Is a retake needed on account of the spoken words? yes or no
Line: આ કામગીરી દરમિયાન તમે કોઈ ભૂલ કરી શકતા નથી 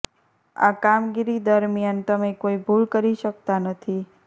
no